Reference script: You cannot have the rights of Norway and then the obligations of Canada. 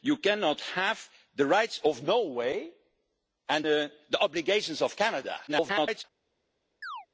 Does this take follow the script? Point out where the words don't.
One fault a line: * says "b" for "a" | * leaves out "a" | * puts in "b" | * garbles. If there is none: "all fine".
* leaves out "then"
* garbles